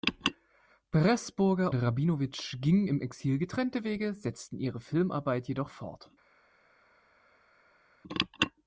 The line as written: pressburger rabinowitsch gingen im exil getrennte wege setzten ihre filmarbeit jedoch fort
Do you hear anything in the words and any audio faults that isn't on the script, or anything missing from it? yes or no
no